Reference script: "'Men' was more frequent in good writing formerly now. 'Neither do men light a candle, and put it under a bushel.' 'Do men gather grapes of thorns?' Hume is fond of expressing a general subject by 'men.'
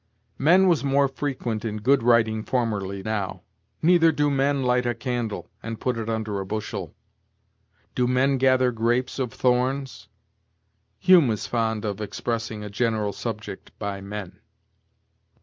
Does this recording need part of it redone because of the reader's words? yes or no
no